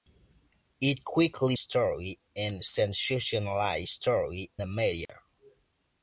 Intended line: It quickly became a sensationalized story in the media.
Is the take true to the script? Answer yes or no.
no